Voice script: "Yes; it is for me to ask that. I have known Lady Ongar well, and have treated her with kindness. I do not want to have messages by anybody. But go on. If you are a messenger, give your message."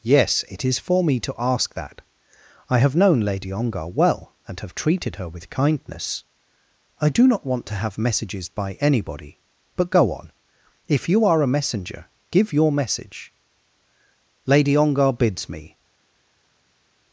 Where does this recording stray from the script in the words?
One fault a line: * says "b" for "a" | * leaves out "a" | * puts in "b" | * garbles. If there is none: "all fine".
* puts in "Lady Ongar bids me"